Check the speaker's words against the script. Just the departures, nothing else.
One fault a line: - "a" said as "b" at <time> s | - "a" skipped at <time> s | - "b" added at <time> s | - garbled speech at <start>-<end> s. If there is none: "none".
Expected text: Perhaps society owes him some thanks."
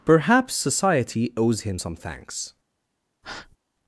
none